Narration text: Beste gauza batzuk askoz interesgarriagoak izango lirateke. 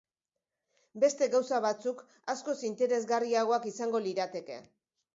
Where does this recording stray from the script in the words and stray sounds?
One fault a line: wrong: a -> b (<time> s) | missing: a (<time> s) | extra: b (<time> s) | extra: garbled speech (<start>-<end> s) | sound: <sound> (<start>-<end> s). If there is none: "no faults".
no faults